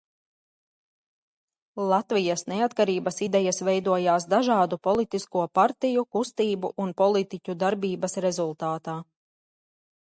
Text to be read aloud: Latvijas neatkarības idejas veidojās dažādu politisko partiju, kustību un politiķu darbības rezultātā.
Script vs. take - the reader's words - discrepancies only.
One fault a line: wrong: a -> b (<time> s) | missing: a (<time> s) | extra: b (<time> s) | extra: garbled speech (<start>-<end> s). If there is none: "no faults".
no faults